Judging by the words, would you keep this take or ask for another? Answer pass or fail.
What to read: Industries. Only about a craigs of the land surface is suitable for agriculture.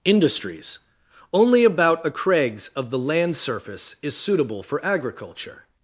pass